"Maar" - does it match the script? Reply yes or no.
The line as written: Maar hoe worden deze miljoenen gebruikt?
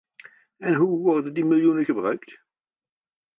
no